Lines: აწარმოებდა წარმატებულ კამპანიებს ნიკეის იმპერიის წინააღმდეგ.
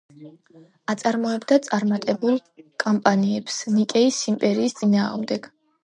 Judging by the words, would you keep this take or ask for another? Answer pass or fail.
pass